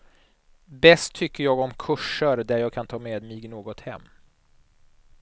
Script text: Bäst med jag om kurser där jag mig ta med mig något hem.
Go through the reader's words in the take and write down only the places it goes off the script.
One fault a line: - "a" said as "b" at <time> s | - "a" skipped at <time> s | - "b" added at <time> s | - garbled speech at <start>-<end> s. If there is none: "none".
- "med" said as "tycker" at 1.1 s
- "mig" said as "kan" at 2.7 s